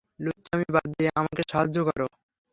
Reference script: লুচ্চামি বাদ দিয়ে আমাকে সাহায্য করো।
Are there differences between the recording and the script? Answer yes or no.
no